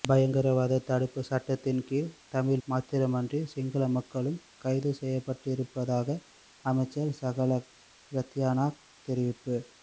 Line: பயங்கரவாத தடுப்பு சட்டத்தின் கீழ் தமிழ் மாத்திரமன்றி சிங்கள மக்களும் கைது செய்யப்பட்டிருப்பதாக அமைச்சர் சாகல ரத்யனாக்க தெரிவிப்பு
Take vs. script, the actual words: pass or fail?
pass